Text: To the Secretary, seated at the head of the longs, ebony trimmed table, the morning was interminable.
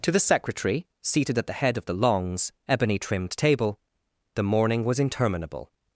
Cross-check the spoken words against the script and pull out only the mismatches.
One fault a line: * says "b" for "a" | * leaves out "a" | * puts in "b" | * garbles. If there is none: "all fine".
all fine